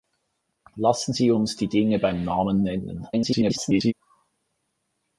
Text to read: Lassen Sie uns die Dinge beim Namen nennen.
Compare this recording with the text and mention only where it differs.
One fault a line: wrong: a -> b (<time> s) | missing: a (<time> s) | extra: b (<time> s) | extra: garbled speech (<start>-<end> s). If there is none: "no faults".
extra: garbled speech (3.1-3.9 s)